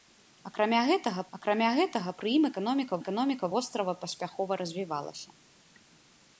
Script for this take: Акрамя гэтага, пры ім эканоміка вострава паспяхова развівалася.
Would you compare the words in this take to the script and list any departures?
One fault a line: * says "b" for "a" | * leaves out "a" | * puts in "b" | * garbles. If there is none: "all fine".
* puts in "акрамя гэтага"
* puts in "эканоміка"